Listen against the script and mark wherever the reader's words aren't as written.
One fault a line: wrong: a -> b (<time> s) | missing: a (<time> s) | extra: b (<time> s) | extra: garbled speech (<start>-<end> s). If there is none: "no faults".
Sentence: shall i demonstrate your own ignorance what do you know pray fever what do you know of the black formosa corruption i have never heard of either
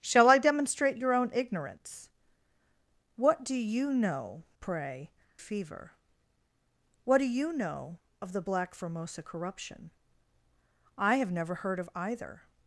no faults